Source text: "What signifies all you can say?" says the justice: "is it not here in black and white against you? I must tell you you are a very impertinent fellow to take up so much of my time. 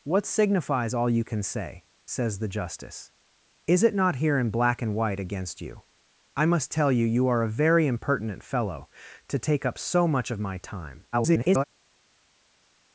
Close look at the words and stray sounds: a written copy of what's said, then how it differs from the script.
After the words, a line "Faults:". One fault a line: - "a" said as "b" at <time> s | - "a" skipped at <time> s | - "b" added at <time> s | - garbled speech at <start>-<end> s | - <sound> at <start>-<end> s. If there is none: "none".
"What signifies all you can say?" says the justice: "is it not here in black and white against you? I must tell you you are a very impertinent fellow to take up so much of my time. [garbled]
Faults:
- garbled speech at 11.1-11.6 s